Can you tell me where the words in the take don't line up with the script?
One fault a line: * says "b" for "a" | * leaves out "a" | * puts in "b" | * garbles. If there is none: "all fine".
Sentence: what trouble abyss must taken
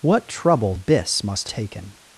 all fine